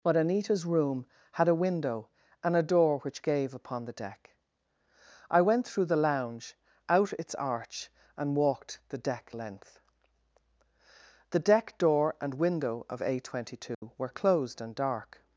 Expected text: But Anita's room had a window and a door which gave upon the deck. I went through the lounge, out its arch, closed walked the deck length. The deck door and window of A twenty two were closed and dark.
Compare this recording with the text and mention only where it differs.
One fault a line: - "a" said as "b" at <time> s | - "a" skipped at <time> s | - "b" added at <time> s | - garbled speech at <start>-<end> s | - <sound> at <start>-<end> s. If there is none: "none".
- "closed" said as "and" at 8.2 s
- dropout at 13.7-13.8 s